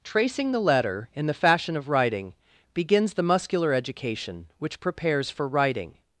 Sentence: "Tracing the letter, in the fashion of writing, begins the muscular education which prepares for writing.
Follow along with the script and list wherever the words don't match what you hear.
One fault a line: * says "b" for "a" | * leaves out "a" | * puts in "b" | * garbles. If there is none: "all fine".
all fine